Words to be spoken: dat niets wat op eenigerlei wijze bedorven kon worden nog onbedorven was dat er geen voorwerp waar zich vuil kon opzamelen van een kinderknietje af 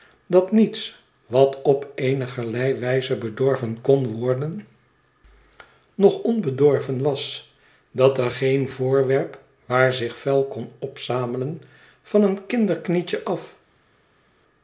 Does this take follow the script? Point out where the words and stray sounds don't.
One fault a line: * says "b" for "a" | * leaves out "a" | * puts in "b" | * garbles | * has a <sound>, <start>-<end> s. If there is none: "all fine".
all fine